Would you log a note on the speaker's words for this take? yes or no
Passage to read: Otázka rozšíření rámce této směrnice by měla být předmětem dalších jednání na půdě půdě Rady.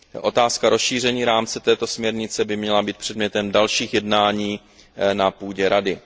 yes